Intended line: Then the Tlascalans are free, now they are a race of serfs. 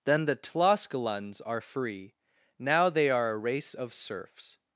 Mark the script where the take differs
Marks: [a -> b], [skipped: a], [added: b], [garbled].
Then the Tlascalans are free, now they are a race of serfs.